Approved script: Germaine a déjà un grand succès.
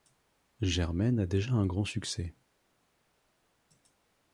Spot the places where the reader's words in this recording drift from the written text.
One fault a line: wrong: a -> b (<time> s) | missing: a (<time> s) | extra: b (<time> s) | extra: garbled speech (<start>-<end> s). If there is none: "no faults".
no faults